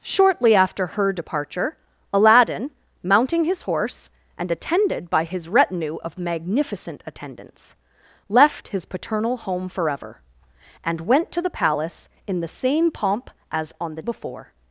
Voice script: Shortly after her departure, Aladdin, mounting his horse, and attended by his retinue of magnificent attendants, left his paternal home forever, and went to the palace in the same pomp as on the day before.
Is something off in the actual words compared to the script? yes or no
yes